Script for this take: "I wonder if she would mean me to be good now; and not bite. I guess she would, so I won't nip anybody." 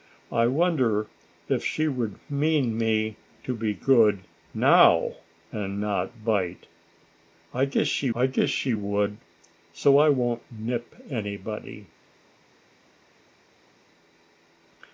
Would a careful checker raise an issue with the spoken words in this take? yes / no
yes